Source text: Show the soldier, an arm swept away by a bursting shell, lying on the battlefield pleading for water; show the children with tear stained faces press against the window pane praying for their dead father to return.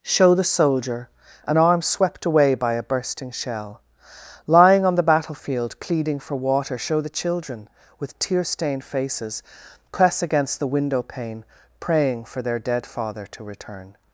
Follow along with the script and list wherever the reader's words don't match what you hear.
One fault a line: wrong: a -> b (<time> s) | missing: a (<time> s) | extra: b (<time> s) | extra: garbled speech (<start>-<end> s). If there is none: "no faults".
no faults